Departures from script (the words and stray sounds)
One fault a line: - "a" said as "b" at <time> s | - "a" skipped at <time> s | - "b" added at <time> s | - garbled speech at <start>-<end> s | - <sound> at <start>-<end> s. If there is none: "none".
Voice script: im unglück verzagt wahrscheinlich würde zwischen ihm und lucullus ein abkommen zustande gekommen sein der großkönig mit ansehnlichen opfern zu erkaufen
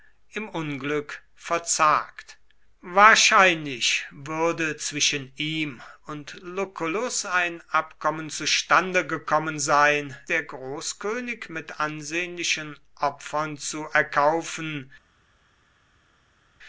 none